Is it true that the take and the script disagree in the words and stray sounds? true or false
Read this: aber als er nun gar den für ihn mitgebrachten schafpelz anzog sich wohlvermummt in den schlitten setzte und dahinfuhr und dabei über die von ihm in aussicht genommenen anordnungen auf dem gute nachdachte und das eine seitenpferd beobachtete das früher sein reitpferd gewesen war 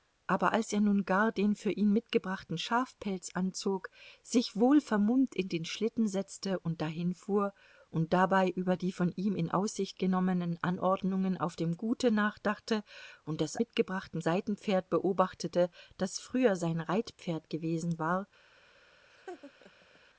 true